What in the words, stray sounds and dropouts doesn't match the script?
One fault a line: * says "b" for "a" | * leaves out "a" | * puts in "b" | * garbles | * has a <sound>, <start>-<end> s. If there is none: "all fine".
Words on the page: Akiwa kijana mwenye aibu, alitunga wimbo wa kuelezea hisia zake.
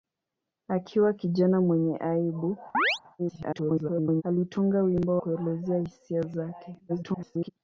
* has a chirp, 2.7-3.0 s
* garbles
* leaves out "wa"
* garbles